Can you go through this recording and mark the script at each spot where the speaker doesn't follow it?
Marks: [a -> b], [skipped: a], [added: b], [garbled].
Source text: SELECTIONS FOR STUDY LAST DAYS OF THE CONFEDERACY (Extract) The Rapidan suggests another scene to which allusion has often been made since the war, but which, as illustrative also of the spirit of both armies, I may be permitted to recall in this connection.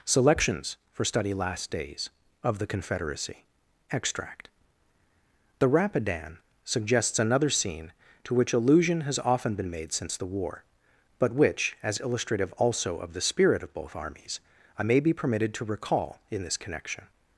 SELECTIONS FOR STUDY LAST DAYS OF THE CONFEDERACY (Extract) The Rapidan suggests another scene to which allusion has often been made since the war, but which, as illustrative also of the spirit of both armies, I may be permitted to recall in this connection.